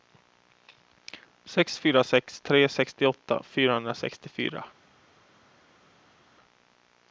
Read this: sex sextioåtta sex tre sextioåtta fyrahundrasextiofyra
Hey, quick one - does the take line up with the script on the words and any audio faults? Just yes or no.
no